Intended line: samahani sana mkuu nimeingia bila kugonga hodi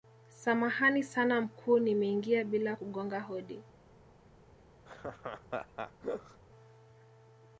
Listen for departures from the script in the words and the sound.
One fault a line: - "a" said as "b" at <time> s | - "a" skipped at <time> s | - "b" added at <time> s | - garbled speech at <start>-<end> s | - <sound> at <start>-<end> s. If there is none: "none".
- laugh at 4.9-6.4 s